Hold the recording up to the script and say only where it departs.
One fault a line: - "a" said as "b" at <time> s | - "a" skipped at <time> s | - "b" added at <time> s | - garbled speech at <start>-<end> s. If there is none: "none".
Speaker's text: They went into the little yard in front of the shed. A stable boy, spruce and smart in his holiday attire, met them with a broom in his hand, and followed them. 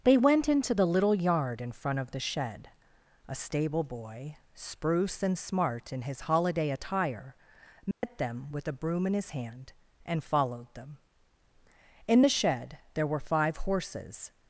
- "In the shed there were five horses" added at 12.1 s